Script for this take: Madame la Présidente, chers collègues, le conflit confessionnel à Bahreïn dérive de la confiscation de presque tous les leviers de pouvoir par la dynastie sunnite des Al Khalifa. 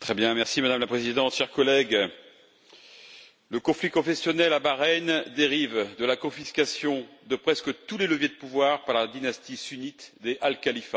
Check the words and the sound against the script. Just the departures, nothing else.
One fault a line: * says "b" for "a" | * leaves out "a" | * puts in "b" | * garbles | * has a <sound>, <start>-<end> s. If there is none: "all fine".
all fine